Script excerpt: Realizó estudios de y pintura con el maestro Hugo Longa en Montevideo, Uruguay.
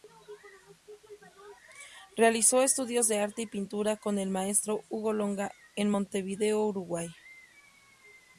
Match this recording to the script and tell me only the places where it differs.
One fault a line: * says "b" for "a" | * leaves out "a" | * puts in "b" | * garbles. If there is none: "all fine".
* puts in "arte"